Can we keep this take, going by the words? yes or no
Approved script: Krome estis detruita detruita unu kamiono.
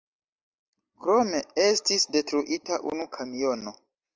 no